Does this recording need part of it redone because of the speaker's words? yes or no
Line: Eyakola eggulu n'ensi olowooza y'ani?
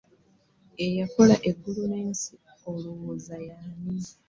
no